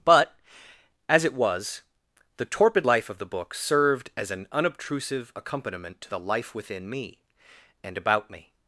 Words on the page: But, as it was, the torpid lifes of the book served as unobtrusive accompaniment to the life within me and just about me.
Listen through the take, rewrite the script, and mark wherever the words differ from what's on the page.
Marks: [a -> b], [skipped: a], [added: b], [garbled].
But, as it was, the torpid [lifes -> life] of the book served as [added: an] unobtrusive accompaniment to the life within me and [skipped: just] about me.